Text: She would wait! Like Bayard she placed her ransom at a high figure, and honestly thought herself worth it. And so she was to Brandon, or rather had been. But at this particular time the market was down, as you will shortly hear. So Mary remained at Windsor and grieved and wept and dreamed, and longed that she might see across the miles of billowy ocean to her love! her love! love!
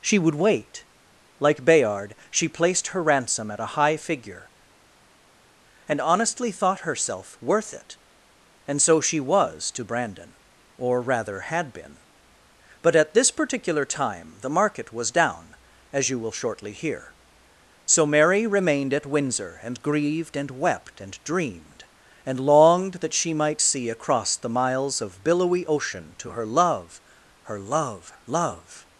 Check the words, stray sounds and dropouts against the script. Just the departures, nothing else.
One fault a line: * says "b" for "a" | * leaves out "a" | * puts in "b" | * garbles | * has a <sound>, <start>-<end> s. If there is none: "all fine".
all fine